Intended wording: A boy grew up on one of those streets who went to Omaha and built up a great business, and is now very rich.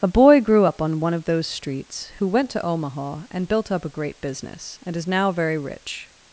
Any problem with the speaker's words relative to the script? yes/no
no